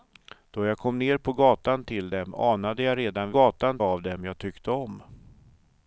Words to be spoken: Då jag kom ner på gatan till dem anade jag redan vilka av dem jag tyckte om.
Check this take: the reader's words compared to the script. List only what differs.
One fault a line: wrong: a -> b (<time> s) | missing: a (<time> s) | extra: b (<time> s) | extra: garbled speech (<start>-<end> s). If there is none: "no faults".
wrong: vilka -> gatan (3.3 s)